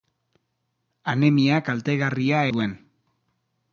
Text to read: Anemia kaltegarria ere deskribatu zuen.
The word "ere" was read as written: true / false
false